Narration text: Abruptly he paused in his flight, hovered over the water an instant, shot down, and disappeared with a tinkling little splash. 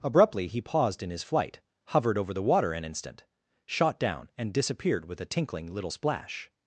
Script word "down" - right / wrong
right